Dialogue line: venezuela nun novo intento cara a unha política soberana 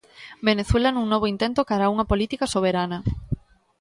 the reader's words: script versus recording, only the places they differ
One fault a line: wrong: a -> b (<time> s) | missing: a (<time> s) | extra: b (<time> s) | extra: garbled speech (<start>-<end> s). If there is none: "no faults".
no faults